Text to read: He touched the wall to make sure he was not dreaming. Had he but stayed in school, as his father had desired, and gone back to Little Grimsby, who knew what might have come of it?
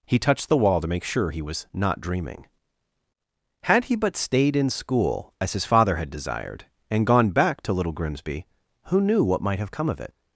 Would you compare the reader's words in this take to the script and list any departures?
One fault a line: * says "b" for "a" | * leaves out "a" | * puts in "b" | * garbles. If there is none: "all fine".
all fine